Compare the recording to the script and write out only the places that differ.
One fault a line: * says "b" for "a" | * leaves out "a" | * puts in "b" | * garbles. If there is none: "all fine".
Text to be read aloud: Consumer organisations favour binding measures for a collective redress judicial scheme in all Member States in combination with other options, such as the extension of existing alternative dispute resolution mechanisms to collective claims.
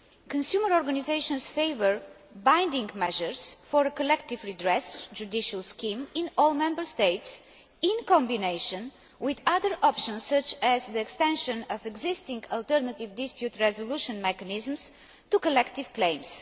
all fine